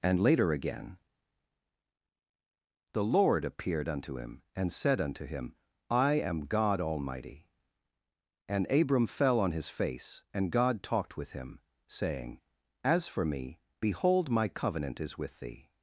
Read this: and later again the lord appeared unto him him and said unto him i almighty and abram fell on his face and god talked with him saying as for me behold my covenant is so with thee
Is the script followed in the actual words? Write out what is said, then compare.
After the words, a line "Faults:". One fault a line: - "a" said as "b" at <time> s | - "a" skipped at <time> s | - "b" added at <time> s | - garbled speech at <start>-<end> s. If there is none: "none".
and later again the lord appeared unto him and said unto him i am god almighty and abram fell on his face and god talked with him saying as for me behold my covenant is with thee
Faults:
- "him" skipped at 4.4 s
- "am god" added at 6.1 s
- "so" skipped at 15.2 s